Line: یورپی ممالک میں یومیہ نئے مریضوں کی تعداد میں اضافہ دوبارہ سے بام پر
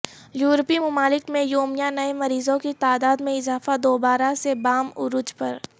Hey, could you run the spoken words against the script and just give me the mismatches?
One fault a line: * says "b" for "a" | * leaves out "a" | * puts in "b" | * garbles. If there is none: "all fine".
* puts in "عروج"